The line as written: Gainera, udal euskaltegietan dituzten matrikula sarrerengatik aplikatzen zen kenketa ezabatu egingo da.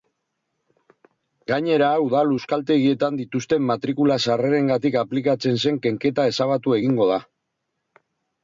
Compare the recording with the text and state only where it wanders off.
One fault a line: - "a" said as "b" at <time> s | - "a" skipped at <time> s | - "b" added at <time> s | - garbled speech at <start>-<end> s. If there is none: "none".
none